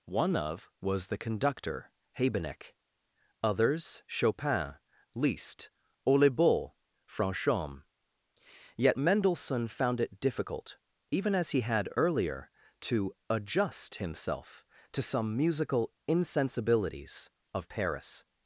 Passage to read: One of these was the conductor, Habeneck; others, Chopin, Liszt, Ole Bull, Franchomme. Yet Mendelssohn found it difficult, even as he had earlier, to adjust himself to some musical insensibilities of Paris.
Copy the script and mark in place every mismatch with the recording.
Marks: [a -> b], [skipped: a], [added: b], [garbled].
One of [skipped: these] was the conductor, Habeneck; others, Chopin, Liszt, Ole Bull, Franchomme. Yet Mendelssohn found it difficult, even as he had earlier, to adjust himself to some musical insensibilities of Paris.